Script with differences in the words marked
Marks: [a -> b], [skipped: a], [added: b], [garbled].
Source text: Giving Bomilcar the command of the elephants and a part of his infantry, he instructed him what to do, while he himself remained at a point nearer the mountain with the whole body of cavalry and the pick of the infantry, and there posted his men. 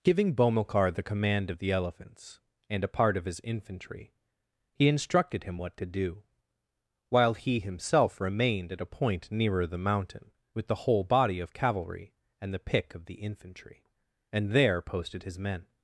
Giving Bomilcar the command of the elephants and a part of his infantry, he instructed him what to do, while he himself remained at a point nearer the mountain with the whole body of cavalry and the pick of the infantry, and there posted his men.